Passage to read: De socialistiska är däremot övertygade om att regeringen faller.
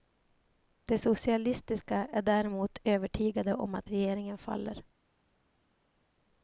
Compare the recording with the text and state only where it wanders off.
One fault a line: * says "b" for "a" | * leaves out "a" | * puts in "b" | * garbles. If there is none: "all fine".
all fine